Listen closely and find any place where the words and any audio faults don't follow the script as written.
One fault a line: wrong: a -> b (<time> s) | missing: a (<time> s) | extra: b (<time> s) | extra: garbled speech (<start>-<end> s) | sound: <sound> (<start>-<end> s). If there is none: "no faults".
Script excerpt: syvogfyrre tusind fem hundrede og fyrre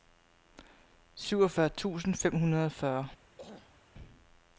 sound: throat clearing (3.4-3.8 s)